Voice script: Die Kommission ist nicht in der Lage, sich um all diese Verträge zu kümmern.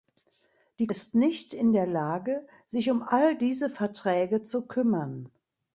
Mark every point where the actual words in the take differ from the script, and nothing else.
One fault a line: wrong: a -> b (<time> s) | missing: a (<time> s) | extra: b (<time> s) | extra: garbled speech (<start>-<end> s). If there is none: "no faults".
missing: Kommission (0.9 s)